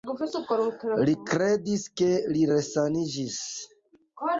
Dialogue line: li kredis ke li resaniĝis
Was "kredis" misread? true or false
false